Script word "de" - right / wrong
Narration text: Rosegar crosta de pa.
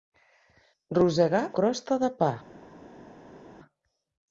right